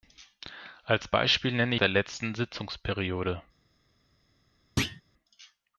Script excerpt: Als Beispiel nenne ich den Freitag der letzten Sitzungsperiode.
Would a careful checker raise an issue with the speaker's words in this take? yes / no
yes